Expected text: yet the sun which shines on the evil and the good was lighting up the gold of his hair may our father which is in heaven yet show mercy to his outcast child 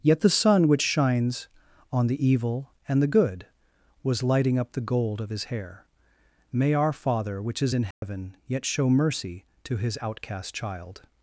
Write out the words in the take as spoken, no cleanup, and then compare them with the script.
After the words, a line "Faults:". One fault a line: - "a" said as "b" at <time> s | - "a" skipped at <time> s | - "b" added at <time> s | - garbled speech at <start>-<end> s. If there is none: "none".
yet the sun which shines on the evil and the good was lighting up the gold of his hair may our father which is in heaven yet show mercy to his outcast child
Faults:
none